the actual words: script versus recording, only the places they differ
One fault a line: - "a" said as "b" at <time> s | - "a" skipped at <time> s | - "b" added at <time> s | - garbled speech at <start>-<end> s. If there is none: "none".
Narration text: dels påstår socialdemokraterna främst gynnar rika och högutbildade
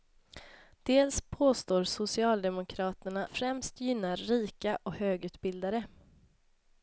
none